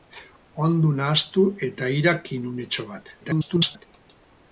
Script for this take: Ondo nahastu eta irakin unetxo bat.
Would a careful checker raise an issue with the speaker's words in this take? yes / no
yes